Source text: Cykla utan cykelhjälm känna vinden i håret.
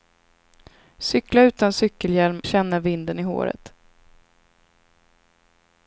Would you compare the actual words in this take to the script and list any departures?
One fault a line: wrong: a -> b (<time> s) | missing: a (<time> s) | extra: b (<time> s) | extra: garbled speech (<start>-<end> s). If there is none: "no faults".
no faults